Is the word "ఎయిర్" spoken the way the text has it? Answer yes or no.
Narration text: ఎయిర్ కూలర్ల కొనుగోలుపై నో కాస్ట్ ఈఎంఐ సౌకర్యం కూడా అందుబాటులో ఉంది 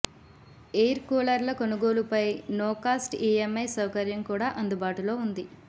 yes